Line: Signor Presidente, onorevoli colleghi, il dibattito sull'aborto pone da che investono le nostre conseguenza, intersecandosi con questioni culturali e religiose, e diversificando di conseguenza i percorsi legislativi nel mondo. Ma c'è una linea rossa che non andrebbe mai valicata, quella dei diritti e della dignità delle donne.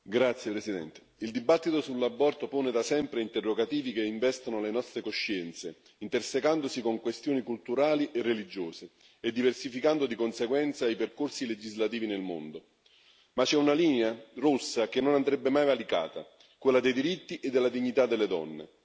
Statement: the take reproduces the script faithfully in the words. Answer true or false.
false